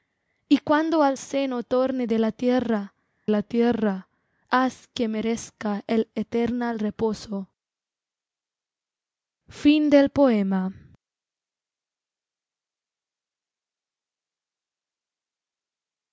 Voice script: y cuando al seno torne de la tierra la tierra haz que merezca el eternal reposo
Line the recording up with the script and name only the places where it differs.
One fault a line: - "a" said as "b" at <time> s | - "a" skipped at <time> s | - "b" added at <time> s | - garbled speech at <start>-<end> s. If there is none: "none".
none